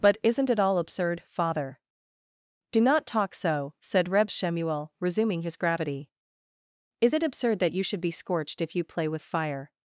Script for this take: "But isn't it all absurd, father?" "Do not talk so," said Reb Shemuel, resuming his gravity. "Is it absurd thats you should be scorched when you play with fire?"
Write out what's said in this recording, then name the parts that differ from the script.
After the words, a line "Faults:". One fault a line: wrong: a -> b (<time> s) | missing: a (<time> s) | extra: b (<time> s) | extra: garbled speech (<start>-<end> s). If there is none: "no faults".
"But isn't it all absurd, father?" "Do not talk so," said Reb Shemuel, resuming his gravity. "Is it absurd that you should be scorched if you play with fire?"
Faults:
wrong: thats -> that (7.6 s)
wrong: when -> if (8.6 s)